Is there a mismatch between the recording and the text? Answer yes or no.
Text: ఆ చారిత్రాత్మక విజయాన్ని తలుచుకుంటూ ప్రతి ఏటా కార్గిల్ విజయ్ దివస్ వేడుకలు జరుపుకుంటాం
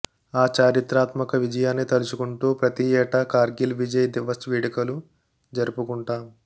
no